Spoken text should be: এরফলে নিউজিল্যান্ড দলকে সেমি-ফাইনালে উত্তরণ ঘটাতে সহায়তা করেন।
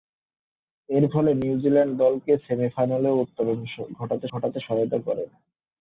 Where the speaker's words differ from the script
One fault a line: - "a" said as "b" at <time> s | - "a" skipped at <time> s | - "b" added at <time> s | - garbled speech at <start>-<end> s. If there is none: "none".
- "ঘটাতে" added at 4.3 s